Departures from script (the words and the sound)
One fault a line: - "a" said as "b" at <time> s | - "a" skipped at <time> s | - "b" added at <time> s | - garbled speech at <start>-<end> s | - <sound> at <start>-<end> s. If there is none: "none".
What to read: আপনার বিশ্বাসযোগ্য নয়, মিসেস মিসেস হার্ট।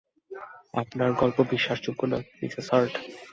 - "গল্প" added at 1.1 s
- "মিসেস" skipped at 2.7 s